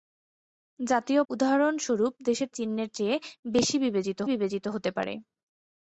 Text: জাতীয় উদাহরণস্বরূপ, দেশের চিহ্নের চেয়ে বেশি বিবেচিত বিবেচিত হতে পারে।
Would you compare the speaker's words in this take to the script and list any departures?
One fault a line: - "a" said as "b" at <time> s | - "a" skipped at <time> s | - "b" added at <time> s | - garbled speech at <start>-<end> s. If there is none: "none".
none